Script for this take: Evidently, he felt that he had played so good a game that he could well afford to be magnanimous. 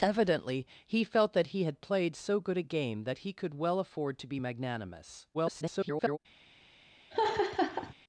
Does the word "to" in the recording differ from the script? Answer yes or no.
no